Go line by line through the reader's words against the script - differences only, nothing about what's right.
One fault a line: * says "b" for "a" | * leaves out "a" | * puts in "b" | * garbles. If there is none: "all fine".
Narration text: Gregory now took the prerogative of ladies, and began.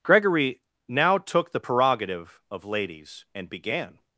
all fine